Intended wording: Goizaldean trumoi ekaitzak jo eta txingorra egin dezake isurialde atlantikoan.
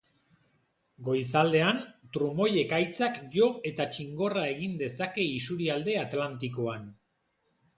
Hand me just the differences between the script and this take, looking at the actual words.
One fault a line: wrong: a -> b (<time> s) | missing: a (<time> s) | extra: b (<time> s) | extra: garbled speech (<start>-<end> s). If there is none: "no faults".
no faults